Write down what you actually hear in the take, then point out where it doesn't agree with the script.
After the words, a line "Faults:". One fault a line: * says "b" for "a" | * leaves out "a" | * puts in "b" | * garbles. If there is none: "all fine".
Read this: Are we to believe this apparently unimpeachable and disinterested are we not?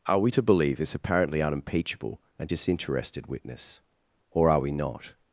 Are we to believe this apparently unimpeachable and disinterested witness, or are we not?
Faults:
* puts in "witness or"